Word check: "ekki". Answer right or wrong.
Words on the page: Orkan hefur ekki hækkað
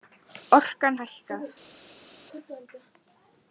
wrong